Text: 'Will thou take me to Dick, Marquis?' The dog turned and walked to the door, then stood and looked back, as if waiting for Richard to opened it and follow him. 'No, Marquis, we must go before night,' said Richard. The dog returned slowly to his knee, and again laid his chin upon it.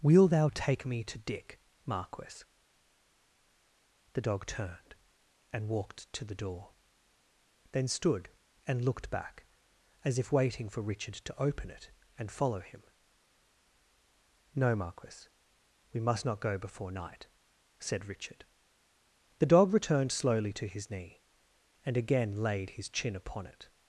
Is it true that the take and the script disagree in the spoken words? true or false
true